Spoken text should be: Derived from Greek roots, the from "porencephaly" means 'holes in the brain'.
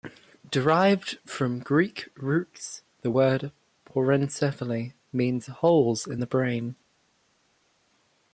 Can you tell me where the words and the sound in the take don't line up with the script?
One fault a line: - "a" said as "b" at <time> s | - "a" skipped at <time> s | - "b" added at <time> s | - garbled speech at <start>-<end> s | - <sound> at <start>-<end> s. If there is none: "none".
- "from" said as "word" at 3.1 s